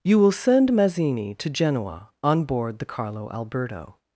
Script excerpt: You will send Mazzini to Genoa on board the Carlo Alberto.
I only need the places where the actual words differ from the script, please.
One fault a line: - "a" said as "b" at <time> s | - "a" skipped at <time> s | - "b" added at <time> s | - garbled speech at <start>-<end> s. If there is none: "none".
none